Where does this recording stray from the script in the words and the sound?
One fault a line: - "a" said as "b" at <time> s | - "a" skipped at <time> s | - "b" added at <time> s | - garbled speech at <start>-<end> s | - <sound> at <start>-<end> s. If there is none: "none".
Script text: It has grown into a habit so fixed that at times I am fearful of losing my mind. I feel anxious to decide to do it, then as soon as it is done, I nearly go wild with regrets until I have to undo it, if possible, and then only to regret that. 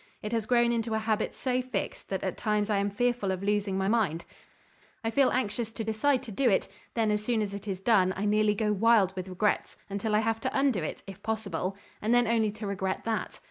none